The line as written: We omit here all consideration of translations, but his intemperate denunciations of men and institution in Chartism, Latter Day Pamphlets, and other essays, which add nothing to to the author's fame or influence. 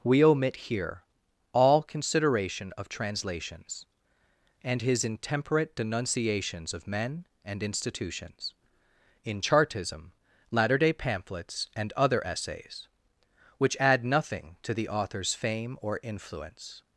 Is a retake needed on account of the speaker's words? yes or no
yes